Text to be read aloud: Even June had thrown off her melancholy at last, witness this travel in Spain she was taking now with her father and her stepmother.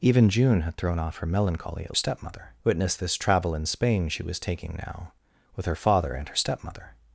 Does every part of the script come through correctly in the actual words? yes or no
no